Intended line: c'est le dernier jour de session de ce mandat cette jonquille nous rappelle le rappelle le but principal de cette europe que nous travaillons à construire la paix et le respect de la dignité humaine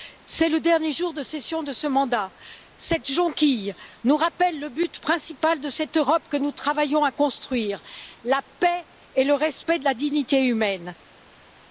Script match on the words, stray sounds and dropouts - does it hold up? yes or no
no